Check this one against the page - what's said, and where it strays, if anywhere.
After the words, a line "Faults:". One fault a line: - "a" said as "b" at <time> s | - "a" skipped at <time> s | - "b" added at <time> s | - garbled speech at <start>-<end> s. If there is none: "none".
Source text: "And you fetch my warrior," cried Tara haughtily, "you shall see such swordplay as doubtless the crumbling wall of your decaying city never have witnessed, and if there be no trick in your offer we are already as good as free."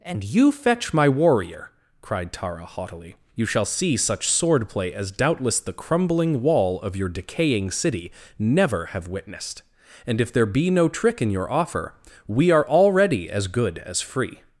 "And you fetch my warrior," cried Tara haughtily, "you shall see such swordplay as doubtless the crumbling wall of your decaying city never have witnessed, and if there be no trick in your offer we are already as good as free."
Faults:
none